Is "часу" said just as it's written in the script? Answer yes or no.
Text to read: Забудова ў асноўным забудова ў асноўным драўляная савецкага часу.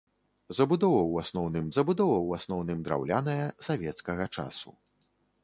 yes